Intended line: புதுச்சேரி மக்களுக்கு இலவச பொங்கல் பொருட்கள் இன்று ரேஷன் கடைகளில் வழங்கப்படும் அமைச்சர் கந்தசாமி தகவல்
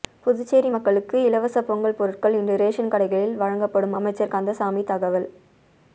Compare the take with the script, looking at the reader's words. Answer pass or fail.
pass